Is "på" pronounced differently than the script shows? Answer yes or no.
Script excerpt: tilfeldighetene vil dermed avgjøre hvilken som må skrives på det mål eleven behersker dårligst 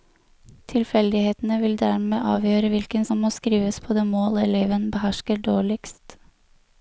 no